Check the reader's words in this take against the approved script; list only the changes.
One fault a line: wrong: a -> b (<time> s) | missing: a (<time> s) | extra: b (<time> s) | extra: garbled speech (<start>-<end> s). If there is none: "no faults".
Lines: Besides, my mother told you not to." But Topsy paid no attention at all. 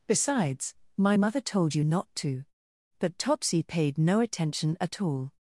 no faults